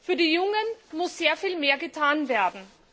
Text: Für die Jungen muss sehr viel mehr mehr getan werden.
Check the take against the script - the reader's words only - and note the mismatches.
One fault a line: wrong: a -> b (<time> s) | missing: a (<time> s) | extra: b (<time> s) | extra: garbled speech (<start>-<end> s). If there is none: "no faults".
missing: mehr (1.8 s)